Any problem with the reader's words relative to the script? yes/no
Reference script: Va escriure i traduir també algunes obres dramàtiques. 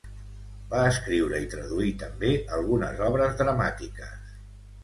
no